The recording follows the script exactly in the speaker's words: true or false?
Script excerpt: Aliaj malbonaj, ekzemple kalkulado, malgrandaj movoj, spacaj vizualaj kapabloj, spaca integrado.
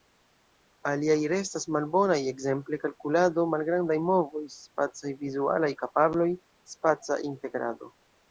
false